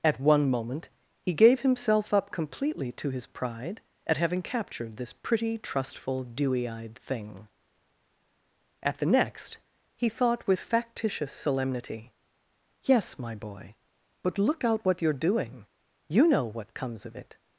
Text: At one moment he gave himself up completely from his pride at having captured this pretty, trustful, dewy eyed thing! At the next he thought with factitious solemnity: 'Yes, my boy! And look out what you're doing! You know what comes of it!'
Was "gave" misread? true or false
false